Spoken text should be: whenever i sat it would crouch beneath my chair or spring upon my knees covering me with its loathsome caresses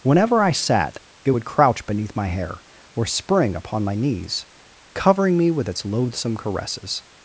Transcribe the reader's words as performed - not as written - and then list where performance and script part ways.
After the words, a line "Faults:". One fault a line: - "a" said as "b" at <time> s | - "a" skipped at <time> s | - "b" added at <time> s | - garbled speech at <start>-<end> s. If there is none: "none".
whenever i sat it would crouch beneath my hair or spring upon my knees covering me with its loathsome caresses
Faults:
- "chair" said as "hair" at 2.3 s